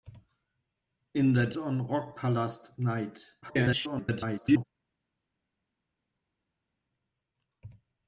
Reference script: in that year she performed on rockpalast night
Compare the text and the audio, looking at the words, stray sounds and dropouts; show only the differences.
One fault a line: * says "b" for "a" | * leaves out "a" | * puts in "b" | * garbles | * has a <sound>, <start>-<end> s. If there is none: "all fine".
* leaves out "year she performed"
* garbles